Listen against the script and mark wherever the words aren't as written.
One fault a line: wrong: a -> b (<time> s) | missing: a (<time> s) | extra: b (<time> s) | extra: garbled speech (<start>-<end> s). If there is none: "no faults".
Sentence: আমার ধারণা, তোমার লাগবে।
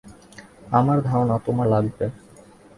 no faults